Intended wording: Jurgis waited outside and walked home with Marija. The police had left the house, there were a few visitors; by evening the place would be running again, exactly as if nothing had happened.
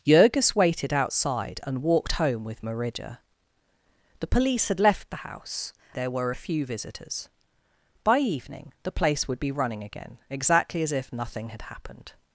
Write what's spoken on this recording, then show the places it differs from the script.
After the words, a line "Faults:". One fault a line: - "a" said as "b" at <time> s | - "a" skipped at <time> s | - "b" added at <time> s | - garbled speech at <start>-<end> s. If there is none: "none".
Jurgis waited outside and walked home with Marija. The police had left the house, there were a few visitors; by evening the place would be running again, exactly as if nothing had happened.
Faults:
none